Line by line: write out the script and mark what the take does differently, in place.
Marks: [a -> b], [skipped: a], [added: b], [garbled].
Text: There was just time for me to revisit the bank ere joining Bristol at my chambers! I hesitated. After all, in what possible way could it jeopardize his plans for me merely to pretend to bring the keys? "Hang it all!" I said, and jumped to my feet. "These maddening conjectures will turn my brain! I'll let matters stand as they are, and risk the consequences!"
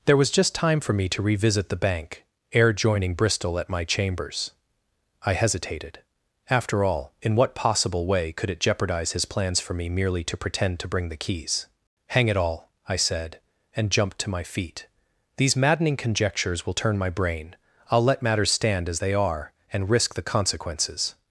There was just time for me to revisit the bank ere joining Bristol at my chambers! I hesitated. After all, in what possible way could it jeopardize his plans for me merely to pretend to bring the keys? "Hang it all!" I said, and jumped to my feet. "These maddening conjectures will turn my brain! I'll let matters stand as they are, and risk the consequences!"